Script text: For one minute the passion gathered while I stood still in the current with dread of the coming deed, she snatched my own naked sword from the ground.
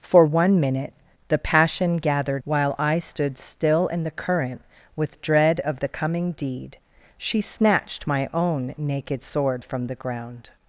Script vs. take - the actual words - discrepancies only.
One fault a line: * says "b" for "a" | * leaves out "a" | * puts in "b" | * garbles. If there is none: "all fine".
all fine